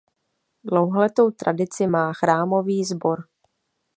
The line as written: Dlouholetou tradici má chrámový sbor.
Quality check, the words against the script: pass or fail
pass